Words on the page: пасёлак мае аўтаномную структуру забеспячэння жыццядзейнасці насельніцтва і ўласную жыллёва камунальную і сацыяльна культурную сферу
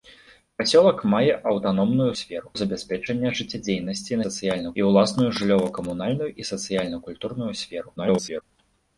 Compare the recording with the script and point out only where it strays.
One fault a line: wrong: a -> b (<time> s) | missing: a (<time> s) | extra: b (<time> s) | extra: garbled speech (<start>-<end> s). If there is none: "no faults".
wrong: структуру -> сферу (2.2 s)
wrong: насельніцтва -> сацыяльна (4.3 s)
extra: garbled speech (8.0-8.4 s)